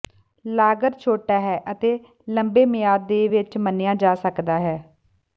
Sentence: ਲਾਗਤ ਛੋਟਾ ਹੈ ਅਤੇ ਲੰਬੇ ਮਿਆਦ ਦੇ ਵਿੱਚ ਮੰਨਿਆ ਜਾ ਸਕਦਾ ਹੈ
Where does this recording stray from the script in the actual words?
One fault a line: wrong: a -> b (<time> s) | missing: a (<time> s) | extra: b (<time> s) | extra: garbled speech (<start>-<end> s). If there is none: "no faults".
no faults